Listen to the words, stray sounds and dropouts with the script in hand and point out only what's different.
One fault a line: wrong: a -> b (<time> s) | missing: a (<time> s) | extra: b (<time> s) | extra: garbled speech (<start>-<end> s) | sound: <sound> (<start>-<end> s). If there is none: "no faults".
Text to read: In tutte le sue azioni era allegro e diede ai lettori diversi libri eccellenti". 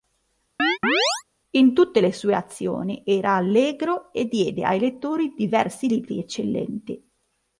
sound: chirp (0.6-1.2 s)